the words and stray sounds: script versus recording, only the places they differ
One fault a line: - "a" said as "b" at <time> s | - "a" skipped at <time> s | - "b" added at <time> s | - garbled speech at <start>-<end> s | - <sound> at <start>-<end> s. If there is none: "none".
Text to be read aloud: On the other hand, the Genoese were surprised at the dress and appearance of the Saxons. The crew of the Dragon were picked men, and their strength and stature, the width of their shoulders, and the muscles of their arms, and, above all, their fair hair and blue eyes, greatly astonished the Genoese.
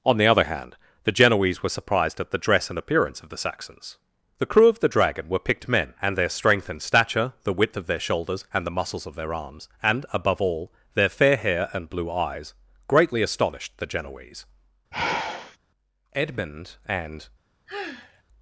- sigh at 14.9-15.6 s
- "Edmund and" added at 16.1 s
- sigh at 17.7-18.2 s